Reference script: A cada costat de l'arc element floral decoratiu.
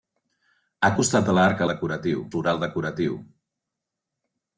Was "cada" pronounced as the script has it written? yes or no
no